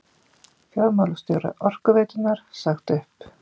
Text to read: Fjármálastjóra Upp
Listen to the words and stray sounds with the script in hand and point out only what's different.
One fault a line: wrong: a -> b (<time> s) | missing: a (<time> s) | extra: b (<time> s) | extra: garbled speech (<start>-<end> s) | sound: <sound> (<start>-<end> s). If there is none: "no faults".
extra: Orkuveitunnar sagt (1.6 s)